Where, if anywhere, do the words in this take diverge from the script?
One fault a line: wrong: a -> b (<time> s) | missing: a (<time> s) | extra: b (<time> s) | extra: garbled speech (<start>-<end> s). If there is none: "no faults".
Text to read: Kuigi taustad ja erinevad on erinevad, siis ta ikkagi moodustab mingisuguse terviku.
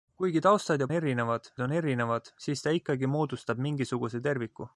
no faults